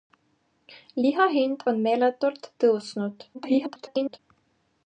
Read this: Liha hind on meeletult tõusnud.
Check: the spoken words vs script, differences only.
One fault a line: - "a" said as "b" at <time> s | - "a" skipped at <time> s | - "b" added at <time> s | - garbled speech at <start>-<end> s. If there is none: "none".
- garbled speech at 3.3-4.2 s